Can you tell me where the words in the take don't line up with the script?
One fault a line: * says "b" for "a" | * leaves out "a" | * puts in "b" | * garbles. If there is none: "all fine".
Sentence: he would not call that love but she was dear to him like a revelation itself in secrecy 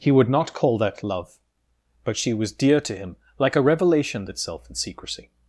all fine